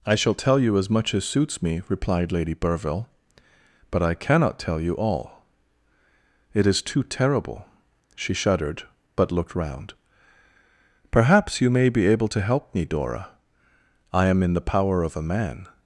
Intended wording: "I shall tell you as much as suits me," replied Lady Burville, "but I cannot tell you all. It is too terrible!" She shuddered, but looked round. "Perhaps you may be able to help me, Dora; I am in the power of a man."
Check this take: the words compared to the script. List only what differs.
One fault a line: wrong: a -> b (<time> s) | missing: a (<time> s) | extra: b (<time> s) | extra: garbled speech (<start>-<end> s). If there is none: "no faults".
no faults